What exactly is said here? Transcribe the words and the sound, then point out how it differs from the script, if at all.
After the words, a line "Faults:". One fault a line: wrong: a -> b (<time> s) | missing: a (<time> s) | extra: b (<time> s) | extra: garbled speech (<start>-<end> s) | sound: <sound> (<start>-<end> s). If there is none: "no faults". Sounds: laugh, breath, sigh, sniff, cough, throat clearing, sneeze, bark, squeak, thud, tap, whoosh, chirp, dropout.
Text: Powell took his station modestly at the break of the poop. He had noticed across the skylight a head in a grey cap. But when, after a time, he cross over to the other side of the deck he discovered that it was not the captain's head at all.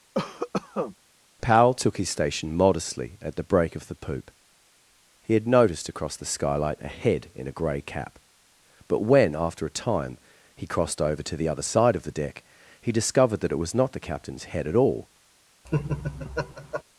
Powell took his station modestly at the break of the poop. He had noticed across the skylight a head in a grey cap. But when, after a time, he crossed over to the other side of the deck he discovered that it was not the captain's head at all.
Faults:
sound: cough (0.1-1.0 s)
wrong: cross -> crossed (10.7 s)
sound: laugh (15.6-16.8 s)